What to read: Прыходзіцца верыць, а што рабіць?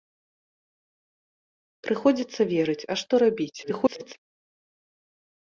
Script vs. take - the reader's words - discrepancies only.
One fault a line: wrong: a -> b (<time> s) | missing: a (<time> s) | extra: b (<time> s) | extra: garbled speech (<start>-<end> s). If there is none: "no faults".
extra: garbled speech (3.6-4.1 s)